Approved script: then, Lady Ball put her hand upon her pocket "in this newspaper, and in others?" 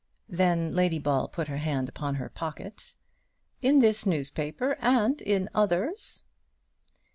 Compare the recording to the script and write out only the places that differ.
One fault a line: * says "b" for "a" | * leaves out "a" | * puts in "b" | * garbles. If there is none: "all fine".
all fine